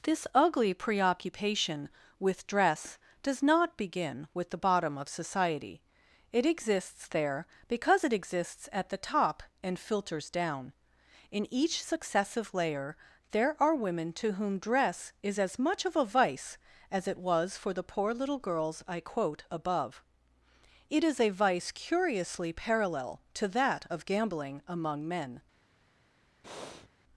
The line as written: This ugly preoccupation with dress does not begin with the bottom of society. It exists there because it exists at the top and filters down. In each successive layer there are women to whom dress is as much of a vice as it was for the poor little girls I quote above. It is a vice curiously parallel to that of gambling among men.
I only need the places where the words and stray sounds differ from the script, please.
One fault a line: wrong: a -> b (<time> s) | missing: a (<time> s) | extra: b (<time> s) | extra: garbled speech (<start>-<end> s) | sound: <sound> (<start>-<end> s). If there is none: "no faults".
sound: breath (26.4-26.9 s)